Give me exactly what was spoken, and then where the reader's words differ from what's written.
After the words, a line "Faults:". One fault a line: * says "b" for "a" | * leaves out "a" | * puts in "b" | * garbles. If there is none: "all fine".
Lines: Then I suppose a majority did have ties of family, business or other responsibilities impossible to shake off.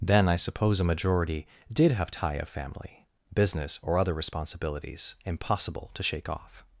Then I suppose a majority did have tie of family, business or other responsibilities impossible to shake off.
Faults:
* says "tie" for "ties"